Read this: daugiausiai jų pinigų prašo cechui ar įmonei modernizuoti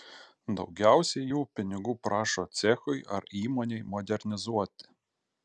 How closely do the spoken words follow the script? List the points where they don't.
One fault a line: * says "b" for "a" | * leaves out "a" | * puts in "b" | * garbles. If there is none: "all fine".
all fine